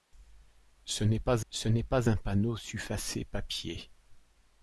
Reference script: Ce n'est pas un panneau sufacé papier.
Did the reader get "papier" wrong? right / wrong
right